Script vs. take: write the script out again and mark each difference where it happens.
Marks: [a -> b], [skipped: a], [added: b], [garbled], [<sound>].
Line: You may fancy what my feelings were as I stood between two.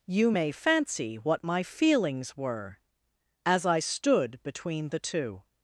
You may fancy what my feelings were as I stood between [added: the] two.